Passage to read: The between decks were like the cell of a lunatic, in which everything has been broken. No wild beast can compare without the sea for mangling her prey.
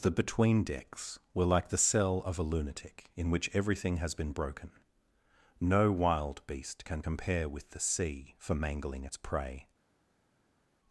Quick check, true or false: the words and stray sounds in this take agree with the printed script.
false